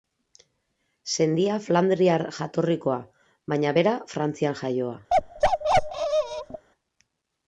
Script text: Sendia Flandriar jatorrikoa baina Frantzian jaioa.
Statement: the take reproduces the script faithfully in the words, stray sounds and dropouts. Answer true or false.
false